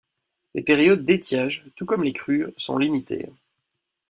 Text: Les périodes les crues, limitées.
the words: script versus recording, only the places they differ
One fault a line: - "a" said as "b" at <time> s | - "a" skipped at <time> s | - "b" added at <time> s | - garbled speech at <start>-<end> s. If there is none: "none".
- "d'étiage tout comme" added at 1.1 s
- "sont" added at 2.6 s